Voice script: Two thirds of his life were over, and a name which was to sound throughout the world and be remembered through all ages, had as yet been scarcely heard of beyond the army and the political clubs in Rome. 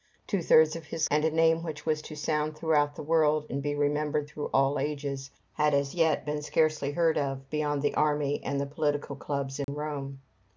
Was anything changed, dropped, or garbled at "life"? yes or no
yes